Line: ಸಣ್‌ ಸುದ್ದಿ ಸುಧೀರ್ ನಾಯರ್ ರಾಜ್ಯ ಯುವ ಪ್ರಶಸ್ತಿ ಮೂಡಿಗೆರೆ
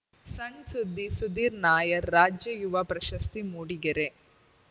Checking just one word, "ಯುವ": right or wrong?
right